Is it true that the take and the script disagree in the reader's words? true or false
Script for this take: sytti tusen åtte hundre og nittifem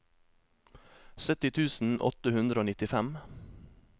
false